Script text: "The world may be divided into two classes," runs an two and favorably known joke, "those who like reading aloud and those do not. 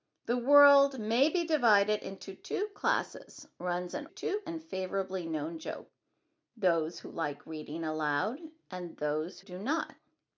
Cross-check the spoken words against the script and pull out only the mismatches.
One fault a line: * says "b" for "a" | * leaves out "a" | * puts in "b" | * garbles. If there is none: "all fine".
all fine